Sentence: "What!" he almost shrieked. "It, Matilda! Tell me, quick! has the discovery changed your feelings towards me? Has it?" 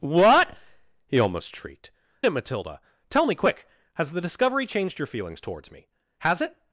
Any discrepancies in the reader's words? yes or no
no